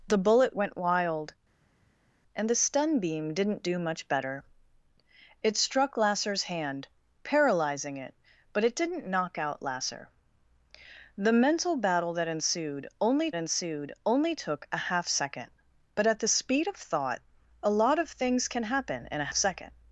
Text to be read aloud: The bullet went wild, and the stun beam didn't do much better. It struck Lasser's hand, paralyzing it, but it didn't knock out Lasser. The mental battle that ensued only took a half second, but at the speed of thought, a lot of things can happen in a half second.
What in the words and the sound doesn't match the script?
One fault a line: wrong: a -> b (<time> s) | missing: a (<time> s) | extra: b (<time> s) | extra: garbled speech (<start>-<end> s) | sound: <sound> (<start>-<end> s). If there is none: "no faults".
extra: ensued only (13.4 s)
missing: half (19.3 s)